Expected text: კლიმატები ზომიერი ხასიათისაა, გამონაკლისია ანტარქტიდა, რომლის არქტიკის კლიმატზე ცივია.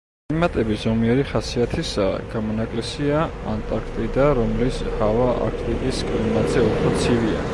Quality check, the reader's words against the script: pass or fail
fail